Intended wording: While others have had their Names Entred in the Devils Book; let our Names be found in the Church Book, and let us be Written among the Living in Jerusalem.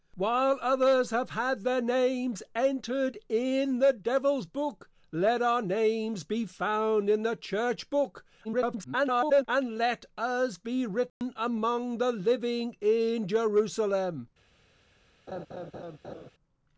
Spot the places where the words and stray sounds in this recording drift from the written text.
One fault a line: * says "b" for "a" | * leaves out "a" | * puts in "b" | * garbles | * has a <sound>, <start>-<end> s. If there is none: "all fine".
* garbles
* has a dropout, 11.1-11.2 s
* has a laugh, 15.3-16.3 s